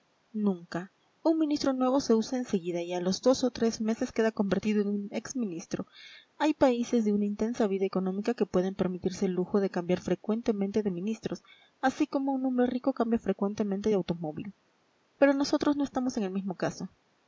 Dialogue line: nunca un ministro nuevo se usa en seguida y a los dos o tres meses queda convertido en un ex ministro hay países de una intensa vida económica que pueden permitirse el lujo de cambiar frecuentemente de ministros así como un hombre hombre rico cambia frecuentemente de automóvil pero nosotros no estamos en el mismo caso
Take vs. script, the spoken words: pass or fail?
fail